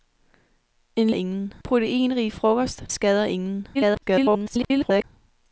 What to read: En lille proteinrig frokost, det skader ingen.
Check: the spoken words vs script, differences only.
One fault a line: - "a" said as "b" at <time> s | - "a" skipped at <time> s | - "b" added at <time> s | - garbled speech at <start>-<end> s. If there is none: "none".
- "lille" said as "ingen" at 1.1 s
- "det" skipped at 2.8 s
- garbled speech at 3.7-5.0 s